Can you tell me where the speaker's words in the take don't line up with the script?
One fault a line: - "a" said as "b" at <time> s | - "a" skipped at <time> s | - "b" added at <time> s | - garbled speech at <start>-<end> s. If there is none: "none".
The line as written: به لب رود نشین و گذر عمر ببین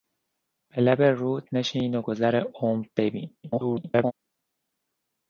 - garbled speech at 3.4-4.1 s